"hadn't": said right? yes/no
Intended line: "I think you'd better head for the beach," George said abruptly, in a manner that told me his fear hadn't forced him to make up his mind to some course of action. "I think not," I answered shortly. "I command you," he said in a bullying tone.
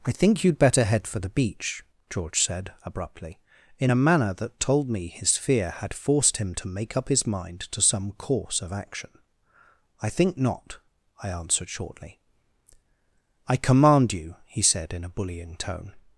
no